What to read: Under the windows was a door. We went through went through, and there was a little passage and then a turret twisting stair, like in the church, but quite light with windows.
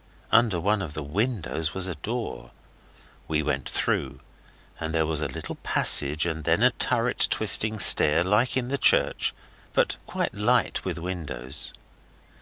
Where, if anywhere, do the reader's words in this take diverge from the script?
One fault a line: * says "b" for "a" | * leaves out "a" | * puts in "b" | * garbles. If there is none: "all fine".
* puts in "one of"
* leaves out "went through"